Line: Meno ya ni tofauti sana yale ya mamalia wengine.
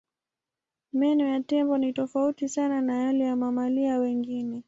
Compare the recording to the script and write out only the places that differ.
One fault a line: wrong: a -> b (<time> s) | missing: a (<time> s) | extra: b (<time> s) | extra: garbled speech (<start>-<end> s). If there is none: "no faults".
extra: tembo (1.4 s)
extra: na (2.8 s)